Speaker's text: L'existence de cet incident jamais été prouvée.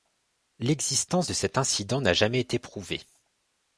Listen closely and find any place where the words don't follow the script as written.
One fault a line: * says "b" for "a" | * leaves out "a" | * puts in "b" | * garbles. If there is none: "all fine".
* puts in "n'a"